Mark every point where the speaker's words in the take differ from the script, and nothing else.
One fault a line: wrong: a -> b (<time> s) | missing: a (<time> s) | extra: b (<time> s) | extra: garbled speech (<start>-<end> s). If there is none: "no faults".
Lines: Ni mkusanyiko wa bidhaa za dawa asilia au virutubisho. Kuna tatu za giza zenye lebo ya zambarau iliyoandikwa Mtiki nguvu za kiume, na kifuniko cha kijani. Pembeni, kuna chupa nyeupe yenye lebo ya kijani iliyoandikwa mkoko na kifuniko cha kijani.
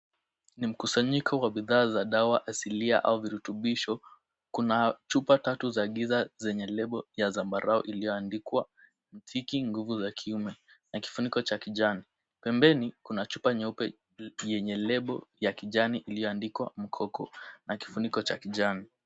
extra: chupa (5.1 s)